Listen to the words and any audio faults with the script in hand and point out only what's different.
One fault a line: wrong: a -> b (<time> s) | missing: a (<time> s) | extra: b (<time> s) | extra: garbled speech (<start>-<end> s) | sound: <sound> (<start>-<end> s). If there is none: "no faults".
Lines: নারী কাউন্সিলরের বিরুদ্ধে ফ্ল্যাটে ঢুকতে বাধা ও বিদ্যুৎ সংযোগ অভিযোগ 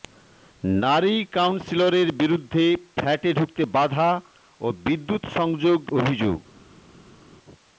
no faults